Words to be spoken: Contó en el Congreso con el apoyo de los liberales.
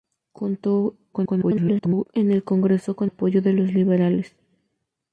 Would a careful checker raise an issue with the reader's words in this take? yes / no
yes